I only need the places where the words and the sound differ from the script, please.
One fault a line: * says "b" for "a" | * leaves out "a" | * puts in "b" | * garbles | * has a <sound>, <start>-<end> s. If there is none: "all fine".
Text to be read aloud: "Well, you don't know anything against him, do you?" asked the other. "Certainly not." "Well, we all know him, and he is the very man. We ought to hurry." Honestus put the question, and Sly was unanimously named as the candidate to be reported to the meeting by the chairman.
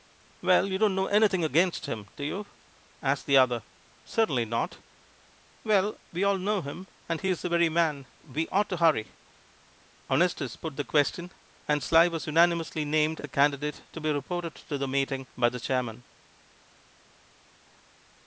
* leaves out "as"